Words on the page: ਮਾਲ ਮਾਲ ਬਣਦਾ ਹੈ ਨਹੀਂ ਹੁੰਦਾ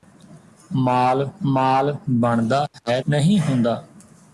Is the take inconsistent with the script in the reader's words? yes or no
no